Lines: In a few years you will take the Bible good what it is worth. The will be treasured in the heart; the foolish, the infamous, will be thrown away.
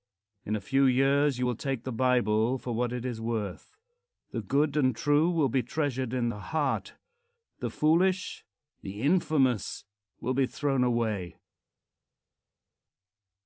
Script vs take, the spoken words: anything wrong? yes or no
yes